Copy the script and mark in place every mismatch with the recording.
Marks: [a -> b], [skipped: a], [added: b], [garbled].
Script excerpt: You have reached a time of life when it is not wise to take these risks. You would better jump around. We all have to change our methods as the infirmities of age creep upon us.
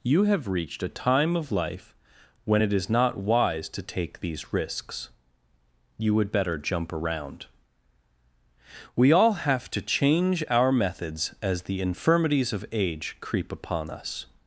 You have reached a time of life when it is not wise to take these risks. You would better jump around. We all have to change our methods as the infirmities of age creep upon us.